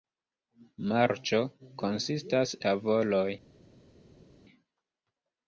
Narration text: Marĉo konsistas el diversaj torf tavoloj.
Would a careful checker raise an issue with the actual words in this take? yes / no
yes